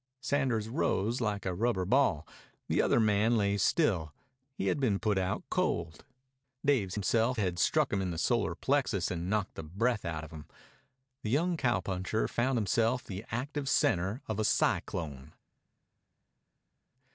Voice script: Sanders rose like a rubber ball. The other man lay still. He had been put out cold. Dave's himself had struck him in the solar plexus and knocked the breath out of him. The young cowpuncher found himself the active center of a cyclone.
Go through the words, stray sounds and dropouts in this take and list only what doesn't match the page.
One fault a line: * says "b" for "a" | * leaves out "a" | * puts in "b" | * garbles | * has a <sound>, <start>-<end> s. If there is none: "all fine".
all fine